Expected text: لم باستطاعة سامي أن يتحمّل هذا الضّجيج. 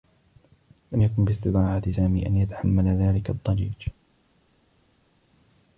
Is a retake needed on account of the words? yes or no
yes